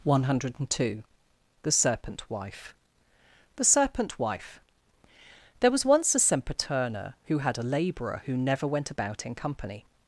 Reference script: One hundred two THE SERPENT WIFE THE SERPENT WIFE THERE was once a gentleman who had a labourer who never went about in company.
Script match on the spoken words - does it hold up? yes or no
no